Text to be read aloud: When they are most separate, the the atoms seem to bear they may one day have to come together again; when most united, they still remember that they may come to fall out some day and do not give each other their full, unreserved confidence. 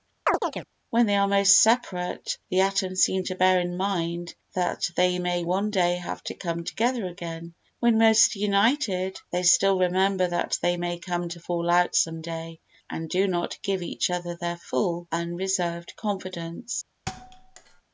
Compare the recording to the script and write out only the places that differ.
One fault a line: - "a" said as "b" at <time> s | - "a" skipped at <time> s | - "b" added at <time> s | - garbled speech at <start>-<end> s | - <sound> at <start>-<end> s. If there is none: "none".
- chirp at 0.3-0.7 s
- "the" skipped at 2.6 s
- "in mind that" added at 3.6 s
- thud at 17.1-17.8 s